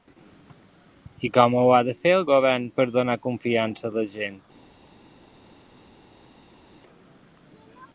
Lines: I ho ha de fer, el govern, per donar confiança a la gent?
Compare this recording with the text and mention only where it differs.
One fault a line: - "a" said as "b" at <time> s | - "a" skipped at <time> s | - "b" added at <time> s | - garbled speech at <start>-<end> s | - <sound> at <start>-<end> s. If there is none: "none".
- "com" added at 1.4 s